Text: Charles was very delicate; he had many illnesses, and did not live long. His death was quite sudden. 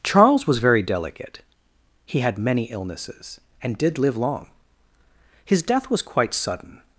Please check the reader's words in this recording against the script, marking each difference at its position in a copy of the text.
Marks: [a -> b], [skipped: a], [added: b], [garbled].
Charles was very delicate; he had many illnesses, and did [skipped: not] live long. His death was quite sudden.